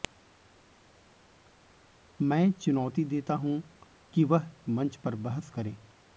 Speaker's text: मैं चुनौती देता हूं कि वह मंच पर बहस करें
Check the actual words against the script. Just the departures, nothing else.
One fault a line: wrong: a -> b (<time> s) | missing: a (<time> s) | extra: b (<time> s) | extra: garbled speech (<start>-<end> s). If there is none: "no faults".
no faults